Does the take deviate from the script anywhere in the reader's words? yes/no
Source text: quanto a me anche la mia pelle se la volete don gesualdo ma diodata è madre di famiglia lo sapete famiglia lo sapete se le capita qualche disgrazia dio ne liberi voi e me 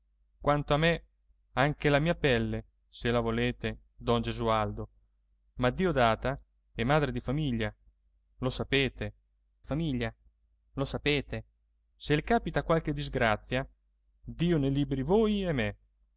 no